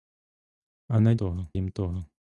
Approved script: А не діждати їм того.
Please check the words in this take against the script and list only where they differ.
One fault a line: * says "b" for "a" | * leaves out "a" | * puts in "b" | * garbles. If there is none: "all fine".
* says "того" for "діждати"